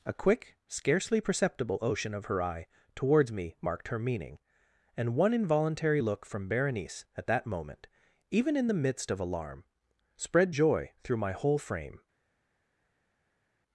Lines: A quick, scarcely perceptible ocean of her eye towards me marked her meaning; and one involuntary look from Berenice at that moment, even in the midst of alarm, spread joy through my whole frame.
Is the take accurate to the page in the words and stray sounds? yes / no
yes